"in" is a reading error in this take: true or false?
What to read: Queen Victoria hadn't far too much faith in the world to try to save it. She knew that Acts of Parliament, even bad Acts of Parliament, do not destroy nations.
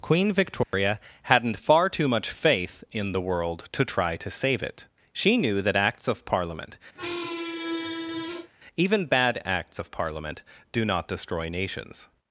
false